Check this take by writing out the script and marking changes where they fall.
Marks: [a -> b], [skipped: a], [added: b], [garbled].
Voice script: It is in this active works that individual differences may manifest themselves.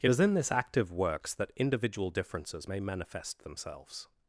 It is in this active works that individual differences may manifest themselves.